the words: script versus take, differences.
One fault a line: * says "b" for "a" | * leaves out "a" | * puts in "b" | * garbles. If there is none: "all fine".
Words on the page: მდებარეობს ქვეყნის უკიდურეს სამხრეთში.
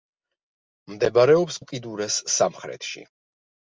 * leaves out "ქვეყნის"